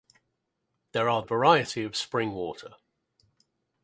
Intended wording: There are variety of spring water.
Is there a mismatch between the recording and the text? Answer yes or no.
no